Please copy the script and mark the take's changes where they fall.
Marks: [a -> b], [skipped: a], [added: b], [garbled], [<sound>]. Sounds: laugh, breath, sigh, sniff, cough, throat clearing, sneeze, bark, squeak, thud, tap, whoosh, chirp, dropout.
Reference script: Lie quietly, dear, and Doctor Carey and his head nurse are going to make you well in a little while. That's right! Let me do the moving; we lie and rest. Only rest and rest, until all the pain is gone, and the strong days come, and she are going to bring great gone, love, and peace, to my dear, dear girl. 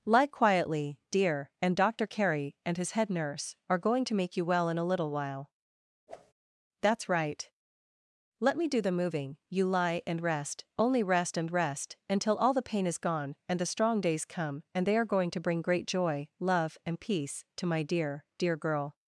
Lie quietly, dear, and Doctor Carey and his head nurse are going to make you well in a little while. [whoosh] That's right! Let me do the moving; [we -> you] lie and rest. Only rest and rest, until all the pain is gone, and the strong days come, and [she -> they] are going to bring great [gone, -> joy] love, and peace, to my dear, dear girl.